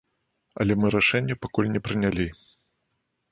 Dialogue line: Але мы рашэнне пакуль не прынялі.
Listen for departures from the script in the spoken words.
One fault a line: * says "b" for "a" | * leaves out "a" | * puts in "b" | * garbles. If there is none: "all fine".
all fine